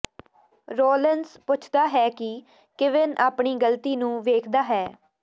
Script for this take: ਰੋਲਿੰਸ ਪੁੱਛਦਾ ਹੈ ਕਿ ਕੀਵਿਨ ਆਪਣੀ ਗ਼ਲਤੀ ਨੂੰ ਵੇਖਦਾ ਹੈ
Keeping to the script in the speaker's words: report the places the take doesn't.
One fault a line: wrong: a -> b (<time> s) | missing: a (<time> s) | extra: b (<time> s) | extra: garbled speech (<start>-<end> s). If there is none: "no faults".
no faults